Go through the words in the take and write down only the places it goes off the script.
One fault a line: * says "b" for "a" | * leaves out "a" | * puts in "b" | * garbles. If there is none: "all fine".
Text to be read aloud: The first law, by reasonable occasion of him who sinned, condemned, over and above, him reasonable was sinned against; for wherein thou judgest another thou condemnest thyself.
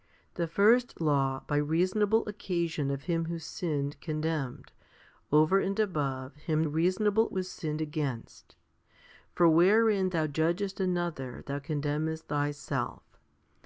all fine